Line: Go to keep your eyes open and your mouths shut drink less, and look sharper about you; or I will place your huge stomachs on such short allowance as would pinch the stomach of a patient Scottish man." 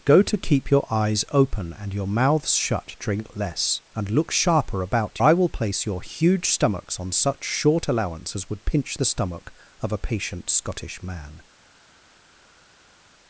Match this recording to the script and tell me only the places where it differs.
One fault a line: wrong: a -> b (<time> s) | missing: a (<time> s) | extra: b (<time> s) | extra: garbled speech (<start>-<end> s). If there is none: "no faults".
missing: you or (5.2 s)